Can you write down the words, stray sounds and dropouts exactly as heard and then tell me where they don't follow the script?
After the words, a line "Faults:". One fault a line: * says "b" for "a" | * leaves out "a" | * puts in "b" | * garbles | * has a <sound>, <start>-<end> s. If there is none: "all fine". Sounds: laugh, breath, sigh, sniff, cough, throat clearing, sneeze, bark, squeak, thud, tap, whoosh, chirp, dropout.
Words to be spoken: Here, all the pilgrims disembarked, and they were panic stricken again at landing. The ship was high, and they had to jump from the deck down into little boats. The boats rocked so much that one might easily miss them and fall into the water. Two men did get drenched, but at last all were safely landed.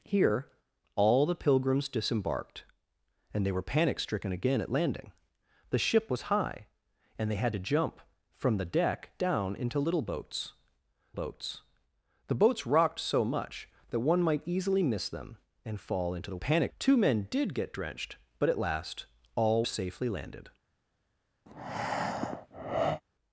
Here, all the pilgrims disembarked, and they were panic stricken again at landing. The ship was high, and they had to jump from the deck down into little boats boats. The boats rocked so much that one might easily miss them and fall into the panic. Two men did get drenched, but at last all safely landed.
Faults:
* puts in "boats"
* says "panic" for "water"
* leaves out "were"
* has a breath, 21.5-23.0 s